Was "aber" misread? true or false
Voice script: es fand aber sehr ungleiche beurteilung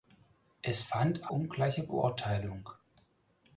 true